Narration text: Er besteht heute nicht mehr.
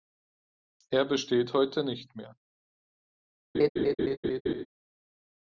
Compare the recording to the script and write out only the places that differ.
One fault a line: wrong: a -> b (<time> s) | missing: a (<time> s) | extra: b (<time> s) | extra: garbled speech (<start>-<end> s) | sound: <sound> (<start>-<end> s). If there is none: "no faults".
sound: laugh (3.5-4.7 s)